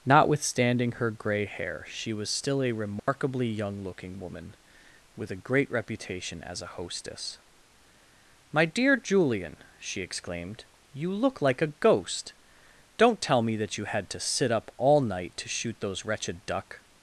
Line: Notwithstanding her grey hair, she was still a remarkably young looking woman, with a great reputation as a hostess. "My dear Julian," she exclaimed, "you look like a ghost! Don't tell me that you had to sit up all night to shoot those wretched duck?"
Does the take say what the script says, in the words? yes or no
yes